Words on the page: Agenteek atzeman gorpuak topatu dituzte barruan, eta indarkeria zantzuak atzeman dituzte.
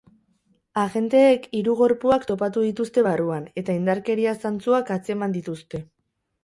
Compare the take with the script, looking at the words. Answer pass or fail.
fail